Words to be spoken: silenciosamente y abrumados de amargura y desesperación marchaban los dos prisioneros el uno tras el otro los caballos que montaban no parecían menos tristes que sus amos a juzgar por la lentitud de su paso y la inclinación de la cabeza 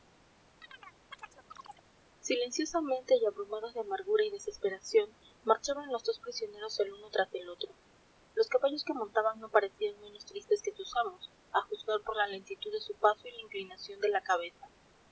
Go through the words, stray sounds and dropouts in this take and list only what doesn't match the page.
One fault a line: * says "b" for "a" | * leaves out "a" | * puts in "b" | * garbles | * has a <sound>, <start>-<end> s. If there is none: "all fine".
* has a chirp, 0.6-1.9 s